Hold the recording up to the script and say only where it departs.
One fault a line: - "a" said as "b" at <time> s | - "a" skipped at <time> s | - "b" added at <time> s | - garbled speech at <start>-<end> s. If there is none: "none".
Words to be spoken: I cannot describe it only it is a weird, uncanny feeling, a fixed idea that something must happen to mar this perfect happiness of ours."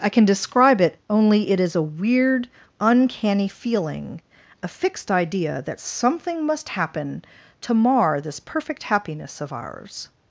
- "cannot" said as "can" at 0.1 s